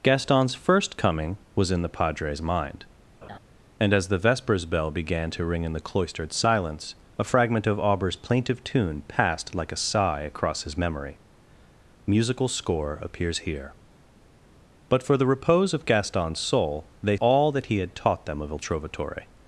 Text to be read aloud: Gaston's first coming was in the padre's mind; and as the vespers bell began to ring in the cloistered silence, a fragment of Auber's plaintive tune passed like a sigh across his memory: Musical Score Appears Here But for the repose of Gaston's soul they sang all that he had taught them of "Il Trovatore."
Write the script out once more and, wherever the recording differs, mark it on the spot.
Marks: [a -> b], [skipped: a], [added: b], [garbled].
Gaston's first coming was in the padre's mind; and as the vespers bell began to ring in the cloistered silence, a fragment of Auber's plaintive tune passed like a sigh across his memory: Musical Score Appears Here But for the repose of Gaston's soul they [skipped: sang] all that he had taught them of "Il Trovatore."